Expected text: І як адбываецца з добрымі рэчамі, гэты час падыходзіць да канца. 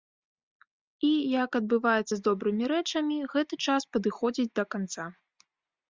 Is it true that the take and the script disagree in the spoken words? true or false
false